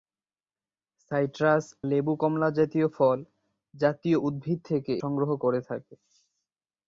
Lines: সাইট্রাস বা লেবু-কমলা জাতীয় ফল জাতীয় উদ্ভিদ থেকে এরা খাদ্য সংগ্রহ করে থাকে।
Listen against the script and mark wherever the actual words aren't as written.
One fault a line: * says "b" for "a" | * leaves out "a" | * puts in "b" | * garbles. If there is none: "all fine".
* leaves out "বা"
* leaves out "এরা খাদ্য"